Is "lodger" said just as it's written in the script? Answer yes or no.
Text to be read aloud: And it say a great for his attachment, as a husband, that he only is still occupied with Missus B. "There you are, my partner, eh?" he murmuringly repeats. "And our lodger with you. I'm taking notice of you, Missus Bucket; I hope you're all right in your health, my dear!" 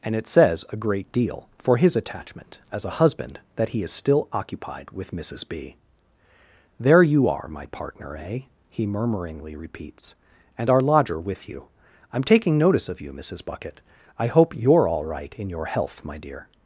yes